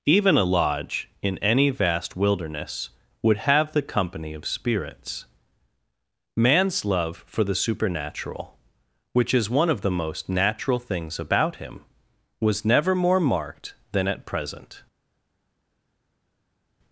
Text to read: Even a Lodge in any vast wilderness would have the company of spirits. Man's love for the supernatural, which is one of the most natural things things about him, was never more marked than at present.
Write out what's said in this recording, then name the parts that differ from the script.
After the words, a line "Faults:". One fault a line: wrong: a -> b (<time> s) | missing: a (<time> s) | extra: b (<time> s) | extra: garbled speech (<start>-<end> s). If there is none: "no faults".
Even a Lodge in any vast wilderness would have the company of spirits. Man's love for the supernatural, which is one of the most natural things about him, was never more marked than at present.
Faults:
missing: things (11.2 s)